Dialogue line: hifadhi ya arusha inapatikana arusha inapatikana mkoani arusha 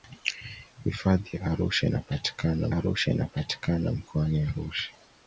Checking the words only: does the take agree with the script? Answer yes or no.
yes